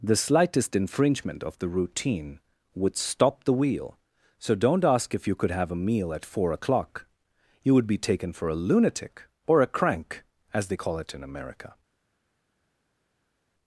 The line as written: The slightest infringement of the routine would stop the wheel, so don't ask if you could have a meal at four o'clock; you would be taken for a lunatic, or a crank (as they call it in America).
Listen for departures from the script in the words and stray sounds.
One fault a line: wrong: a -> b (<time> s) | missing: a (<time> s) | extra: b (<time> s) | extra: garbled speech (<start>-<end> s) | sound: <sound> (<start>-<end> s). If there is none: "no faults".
no faults